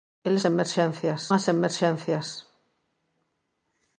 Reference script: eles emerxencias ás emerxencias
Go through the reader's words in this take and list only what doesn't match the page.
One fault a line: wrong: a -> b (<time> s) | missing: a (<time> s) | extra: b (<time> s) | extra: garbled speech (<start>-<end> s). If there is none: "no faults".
no faults